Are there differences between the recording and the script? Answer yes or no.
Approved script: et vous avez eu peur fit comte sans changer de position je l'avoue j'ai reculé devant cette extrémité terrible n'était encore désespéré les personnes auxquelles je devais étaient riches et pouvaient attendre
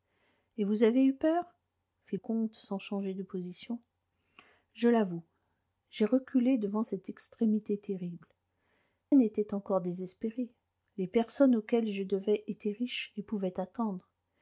no